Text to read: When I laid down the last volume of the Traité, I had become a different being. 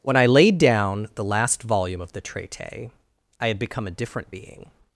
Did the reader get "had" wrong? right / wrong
right